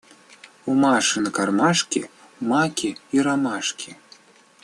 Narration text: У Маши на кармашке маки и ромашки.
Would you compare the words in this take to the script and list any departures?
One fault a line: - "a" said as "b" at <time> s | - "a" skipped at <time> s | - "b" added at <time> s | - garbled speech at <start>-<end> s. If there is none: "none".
none